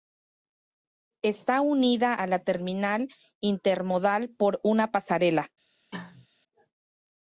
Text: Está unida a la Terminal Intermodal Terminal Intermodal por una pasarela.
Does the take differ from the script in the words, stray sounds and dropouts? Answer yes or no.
yes